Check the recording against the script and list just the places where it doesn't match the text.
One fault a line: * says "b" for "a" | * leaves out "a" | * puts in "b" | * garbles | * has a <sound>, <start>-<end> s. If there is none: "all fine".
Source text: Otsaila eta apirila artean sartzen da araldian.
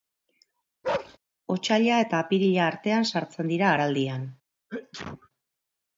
* has a bark, 0.8-1.2 s
* says "dira" for "da"
* has a sneeze, 4.7-5.3 s